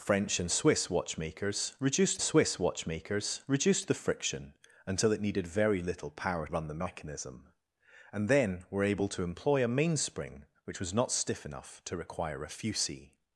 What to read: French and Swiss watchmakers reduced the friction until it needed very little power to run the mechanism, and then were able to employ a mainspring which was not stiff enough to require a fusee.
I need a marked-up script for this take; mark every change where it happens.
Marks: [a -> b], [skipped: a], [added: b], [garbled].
French and Swiss watchmakers reduced [added: Swiss watchmakers reduced] the friction until it needed very little power [skipped: to] run the mechanism, and then were able to employ a mainspring which was not stiff enough to require a fusee.